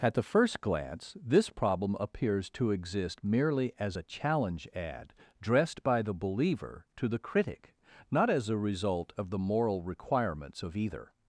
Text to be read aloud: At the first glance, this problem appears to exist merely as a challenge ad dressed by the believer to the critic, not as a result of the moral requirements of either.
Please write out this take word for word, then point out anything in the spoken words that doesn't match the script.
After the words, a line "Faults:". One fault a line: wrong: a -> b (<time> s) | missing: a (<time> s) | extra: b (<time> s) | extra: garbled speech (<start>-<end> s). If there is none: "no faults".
At the first glance, this problem appears to exist merely as a challenge ad dressed by the believer to the critic, not as a result of the moral requirements of either.
Faults:
no faults